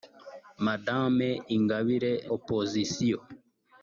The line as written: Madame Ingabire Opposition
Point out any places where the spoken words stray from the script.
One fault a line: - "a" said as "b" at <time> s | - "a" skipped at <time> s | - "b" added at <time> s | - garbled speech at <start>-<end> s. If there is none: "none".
none